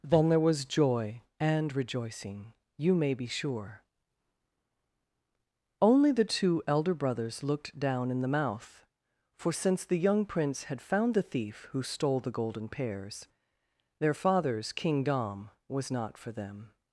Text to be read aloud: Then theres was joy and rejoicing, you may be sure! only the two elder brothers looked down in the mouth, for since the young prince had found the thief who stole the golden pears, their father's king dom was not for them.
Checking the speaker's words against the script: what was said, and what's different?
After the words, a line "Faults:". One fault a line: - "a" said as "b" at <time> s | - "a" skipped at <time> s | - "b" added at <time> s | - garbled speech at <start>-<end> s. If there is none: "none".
Then there was joy and rejoicing, you may be sure! only the two elder brothers looked down in the mouth, for since the young prince had found the thief who stole the golden pears, their father's king dom was not for them.
Faults:
- "theres" said as "there" at 0.3 s